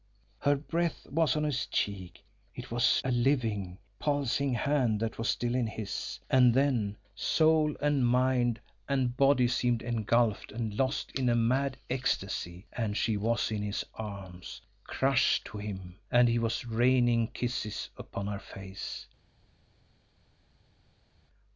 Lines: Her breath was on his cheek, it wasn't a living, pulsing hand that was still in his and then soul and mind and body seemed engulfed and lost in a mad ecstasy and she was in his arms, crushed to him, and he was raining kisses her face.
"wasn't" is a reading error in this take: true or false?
true